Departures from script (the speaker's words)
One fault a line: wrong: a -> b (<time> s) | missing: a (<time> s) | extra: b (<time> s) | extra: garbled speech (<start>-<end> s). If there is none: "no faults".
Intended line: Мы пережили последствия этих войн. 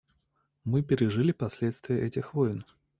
no faults